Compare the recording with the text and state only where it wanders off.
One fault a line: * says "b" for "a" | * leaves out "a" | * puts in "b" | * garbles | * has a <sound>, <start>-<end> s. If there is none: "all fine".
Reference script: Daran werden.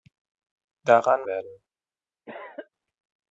* has a cough, 2.3-2.7 s